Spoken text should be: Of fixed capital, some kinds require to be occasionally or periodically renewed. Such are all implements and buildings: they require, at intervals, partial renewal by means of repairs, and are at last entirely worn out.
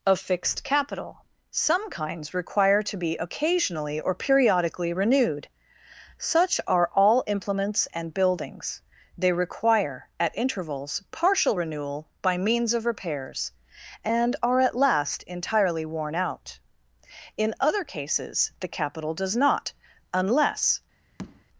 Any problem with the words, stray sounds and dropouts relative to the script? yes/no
yes